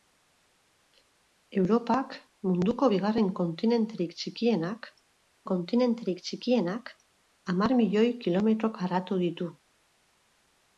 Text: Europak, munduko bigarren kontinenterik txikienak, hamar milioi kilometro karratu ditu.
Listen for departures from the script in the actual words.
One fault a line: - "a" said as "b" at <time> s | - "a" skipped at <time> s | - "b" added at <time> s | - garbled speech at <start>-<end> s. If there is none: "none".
- "kontinenterik txikienak" added at 5.5 s